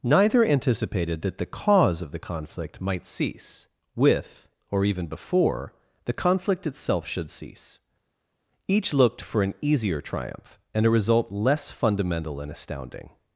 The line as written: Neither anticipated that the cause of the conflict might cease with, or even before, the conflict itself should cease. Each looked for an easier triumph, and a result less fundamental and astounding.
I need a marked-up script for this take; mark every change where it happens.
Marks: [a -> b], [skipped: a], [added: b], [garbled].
Neither anticipated that the cause of the conflict might cease with, or even before, the conflict itself should cease. Each looked for an easier triumph, and a result less fundamental and astounding.